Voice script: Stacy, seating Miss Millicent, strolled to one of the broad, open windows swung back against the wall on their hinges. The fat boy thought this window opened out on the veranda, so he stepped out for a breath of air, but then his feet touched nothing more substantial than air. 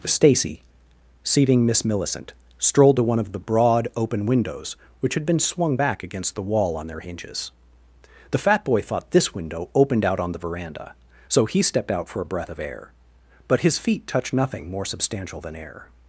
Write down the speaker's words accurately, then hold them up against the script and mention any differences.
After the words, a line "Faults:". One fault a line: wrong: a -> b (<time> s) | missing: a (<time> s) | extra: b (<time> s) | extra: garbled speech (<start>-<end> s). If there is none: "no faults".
Stacy, seating Miss Millicent, strolled to one of the broad, open windows which had been swung back against the wall on their hinges. The fat boy thought this window opened out on the veranda, so he stepped out for a breath of air, but his feet touched nothing more substantial than air.
Faults:
extra: which had been (5.0 s)
missing: then (13.6 s)